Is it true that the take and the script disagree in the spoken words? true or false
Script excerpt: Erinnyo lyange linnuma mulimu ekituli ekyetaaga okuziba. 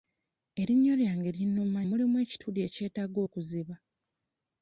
false